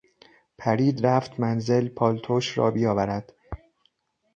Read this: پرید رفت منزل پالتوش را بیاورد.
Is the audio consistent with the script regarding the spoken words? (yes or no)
yes